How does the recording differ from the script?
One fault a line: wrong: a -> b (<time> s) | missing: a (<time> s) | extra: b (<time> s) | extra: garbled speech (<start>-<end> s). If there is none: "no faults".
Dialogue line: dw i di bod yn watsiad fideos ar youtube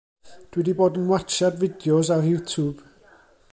no faults